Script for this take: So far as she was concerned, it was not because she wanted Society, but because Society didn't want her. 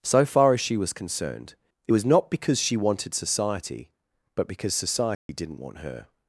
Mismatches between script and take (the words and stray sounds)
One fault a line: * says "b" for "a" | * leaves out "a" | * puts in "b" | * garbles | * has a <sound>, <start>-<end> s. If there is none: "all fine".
* has a dropout, 5.1-5.3 s